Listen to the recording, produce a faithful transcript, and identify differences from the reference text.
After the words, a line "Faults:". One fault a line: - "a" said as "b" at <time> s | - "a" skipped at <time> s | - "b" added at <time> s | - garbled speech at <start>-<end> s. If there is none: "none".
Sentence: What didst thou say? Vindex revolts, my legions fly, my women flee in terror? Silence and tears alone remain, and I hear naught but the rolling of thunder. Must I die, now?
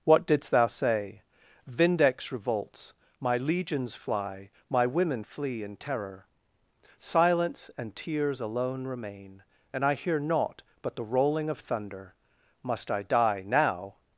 What didst thou say? Vindex revolts, my legions fly, my women flee in terror? Silence and tears alone remain, and I hear naught but the rolling of thunder. Must I die, now?
Faults:
none